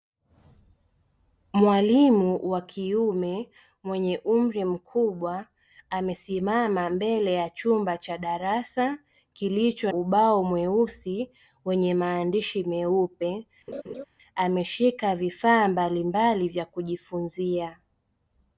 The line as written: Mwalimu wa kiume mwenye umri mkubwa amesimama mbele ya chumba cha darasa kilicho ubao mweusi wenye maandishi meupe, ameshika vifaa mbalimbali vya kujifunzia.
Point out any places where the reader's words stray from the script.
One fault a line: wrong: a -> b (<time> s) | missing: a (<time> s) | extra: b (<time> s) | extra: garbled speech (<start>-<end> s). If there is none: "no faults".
no faults